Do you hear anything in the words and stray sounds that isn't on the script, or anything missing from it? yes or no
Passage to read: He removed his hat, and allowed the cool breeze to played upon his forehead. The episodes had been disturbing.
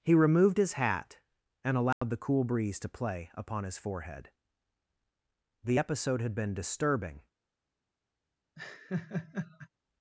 yes